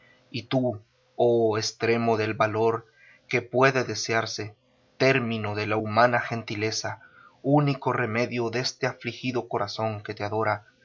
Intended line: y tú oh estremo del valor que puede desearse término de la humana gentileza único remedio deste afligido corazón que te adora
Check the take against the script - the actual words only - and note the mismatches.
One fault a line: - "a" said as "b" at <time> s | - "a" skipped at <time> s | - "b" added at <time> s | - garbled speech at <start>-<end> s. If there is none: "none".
none